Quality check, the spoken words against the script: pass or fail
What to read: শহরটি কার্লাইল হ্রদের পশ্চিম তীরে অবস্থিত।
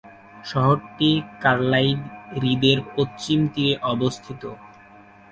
pass